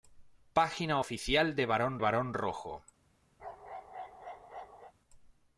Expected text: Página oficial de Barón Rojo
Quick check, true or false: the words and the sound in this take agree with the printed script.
false